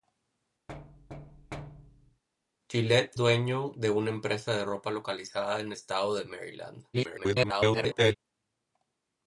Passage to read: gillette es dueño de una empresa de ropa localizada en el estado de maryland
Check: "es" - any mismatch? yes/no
yes